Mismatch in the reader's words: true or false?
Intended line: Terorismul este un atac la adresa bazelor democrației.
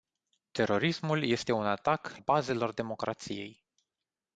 true